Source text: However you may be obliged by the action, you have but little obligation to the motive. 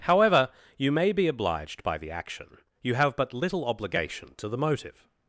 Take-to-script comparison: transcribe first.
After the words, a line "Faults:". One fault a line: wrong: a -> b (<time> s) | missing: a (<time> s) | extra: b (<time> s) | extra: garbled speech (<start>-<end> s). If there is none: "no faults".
However you may be obliged by the action, you have but little obligation to the motive.
Faults:
no faults